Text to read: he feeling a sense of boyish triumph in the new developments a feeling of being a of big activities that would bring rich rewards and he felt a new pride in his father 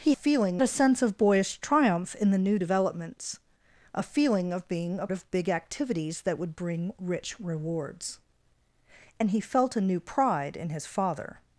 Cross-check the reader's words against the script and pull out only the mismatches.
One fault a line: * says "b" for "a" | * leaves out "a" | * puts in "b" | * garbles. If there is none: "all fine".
all fine